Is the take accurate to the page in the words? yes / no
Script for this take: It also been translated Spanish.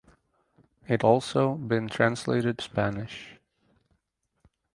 yes